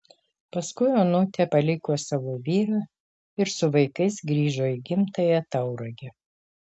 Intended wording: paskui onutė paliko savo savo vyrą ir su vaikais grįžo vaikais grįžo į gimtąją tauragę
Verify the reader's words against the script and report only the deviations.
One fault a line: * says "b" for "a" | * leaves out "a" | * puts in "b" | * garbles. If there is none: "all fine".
* leaves out "savo"
* leaves out "vaikais grįžo"